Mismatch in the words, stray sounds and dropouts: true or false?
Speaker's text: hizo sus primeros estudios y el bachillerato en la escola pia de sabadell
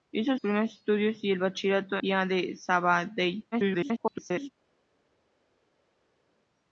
true